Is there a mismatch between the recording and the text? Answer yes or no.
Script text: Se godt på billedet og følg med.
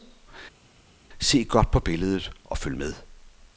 no